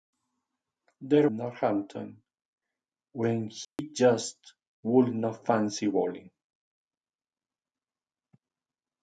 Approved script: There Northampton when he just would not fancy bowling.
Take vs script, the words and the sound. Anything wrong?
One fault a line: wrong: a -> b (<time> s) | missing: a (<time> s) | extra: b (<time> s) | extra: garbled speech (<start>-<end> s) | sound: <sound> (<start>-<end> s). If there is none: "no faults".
sound: dropout (3.6-3.8 s)